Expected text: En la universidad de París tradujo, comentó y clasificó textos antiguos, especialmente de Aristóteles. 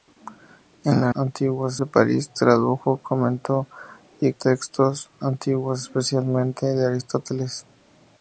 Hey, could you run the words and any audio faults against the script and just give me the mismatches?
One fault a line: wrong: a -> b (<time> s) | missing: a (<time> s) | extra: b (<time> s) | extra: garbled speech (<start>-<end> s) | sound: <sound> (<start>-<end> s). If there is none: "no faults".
wrong: universidad -> antiguos (1.1 s)
missing: clasificó (4.3 s)